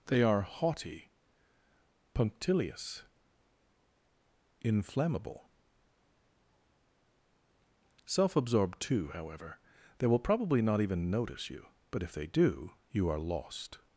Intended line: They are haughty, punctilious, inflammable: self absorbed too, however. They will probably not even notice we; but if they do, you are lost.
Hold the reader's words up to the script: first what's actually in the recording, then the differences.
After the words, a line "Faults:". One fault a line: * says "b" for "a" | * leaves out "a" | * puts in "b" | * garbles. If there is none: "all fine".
They are haughty, punctilious, inflammable: self absorbed too, however. They will probably not even notice you; but if they do, you are lost.
Faults:
* says "you" for "we"